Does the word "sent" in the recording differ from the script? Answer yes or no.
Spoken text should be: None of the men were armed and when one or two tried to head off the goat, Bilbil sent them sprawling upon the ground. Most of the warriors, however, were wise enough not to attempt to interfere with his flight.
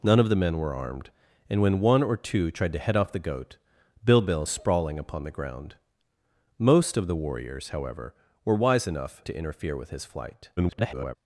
yes